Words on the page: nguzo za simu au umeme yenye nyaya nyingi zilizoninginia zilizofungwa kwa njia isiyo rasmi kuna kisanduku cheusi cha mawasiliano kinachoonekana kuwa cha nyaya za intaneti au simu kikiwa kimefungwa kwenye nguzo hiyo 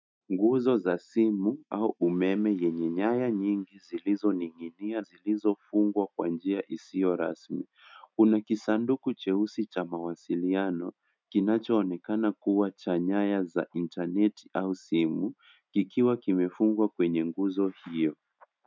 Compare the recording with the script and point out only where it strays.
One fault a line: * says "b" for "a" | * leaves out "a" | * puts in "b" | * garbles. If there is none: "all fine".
all fine